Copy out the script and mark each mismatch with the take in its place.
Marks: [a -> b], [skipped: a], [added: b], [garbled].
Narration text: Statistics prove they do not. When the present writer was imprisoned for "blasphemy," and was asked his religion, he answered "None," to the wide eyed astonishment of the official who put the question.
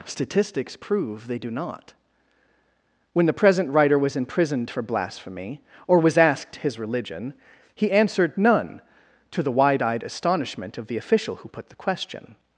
Statistics prove they do not. When the present writer was imprisoned for "blasphemy," [and -> or] was asked his religion, he answered "None," to the wide eyed astonishment of the official who put the question.